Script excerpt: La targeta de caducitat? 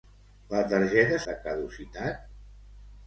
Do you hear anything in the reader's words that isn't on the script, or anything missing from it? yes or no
no